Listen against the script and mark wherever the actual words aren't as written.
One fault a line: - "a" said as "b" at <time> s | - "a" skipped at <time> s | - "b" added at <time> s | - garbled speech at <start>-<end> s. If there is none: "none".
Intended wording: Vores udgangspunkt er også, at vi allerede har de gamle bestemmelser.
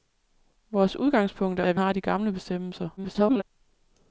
- "også" skipped at 1.6 s
- "allerede" skipped at 1.8 s
- garbled speech at 3.0-3.4 s